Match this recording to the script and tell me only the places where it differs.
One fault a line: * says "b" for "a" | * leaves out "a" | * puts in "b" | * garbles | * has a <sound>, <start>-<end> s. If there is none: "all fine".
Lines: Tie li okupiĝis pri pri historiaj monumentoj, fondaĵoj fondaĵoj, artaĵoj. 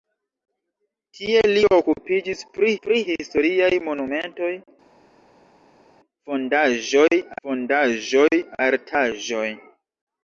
all fine